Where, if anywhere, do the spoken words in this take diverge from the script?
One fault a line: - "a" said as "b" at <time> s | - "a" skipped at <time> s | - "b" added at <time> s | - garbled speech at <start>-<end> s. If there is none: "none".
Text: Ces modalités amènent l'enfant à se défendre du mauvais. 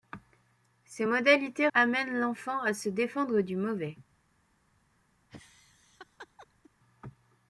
none